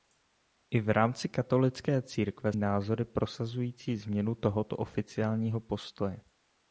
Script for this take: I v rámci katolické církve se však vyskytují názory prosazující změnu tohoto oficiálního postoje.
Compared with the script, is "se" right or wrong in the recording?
wrong